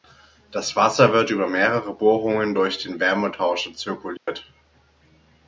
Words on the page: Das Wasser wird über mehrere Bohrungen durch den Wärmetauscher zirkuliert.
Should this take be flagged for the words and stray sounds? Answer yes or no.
yes